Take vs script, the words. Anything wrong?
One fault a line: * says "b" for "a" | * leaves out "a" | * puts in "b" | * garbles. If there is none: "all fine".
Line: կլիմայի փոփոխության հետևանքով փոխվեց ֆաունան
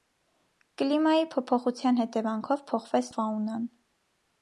all fine